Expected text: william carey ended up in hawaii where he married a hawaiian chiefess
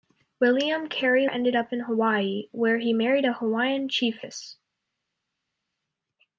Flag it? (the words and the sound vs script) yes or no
no